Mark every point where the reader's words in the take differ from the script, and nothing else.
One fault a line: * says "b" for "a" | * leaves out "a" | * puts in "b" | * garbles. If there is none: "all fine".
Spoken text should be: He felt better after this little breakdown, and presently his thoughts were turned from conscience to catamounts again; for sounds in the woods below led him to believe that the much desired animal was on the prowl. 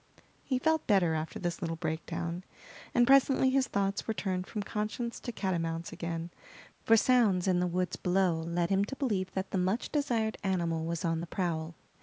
all fine